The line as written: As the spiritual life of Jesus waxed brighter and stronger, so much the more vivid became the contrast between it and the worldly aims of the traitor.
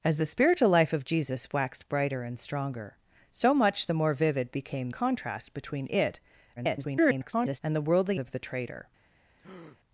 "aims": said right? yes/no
no